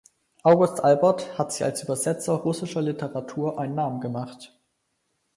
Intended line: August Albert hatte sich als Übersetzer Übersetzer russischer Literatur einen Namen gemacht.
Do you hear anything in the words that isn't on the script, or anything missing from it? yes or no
yes